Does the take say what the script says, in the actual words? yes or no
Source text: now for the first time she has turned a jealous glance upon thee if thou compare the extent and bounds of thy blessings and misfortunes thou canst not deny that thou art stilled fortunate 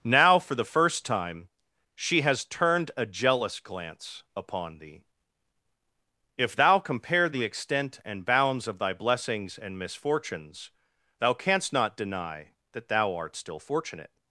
no